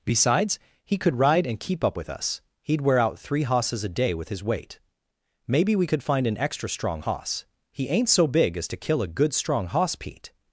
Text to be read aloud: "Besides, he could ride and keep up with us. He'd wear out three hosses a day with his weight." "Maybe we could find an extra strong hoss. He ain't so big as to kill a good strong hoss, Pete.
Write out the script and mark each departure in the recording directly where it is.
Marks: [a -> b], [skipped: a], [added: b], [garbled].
"Besides, he could ride and keep up with us. He'd wear out three hosses a day with his weight." "Maybe we could find an extra strong hoss. He ain't so big as to kill a good strong hoss, Pete.